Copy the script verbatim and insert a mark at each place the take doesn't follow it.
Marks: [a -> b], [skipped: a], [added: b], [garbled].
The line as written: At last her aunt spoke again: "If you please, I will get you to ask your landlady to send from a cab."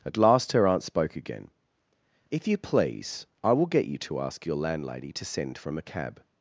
At last her aunt spoke again: "If you please, I will get you to ask your landlady to send from a cab."